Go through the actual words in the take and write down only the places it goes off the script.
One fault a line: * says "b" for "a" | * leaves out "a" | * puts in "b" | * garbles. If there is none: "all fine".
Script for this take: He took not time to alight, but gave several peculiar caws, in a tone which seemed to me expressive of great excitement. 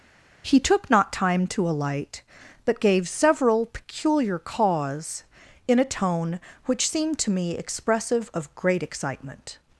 all fine